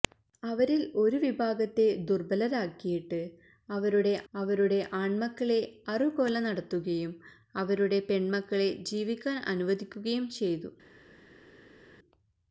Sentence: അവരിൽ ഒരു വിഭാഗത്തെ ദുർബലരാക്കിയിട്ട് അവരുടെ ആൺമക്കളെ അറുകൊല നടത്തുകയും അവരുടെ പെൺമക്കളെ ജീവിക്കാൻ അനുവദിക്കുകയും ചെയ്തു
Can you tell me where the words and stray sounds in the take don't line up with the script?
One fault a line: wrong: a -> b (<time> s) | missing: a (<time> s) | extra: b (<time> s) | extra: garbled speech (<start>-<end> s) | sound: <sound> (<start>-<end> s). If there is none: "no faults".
extra: അവരുടെ (4.3 s)